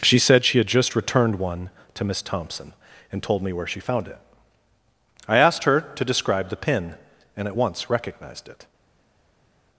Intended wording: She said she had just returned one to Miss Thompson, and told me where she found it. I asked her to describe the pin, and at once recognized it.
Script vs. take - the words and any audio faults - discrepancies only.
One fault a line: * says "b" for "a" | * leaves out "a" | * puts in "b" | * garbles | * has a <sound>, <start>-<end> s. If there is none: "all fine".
all fine